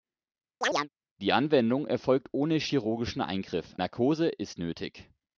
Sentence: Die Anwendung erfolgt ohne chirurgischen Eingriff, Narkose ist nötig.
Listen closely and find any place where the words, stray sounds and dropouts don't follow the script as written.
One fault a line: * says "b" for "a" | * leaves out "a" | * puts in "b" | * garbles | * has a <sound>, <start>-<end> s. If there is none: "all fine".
* has a chirp, 0.6-0.9 s